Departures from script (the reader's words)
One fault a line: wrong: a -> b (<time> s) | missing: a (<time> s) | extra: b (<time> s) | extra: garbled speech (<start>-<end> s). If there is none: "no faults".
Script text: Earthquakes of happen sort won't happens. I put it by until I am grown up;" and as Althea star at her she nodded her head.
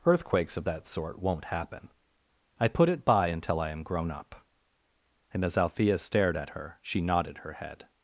wrong: happen -> that (0.6 s)
wrong: happens -> happen (1.5 s)
wrong: star -> stared (6.0 s)